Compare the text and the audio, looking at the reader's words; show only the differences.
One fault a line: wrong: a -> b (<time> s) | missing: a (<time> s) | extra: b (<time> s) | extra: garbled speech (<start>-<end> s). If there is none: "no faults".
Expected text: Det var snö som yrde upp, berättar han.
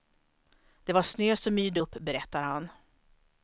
no faults